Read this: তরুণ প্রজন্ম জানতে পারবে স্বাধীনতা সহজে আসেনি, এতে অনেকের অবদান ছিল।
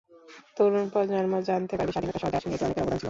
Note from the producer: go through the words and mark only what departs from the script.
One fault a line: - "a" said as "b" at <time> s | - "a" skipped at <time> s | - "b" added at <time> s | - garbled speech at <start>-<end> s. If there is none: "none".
none